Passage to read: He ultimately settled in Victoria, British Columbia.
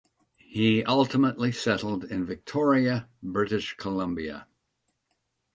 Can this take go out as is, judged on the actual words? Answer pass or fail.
pass